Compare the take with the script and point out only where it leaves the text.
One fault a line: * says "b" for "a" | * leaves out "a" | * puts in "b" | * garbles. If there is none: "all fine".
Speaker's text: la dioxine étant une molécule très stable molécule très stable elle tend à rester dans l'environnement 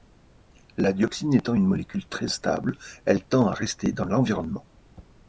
* leaves out "molécule très stable"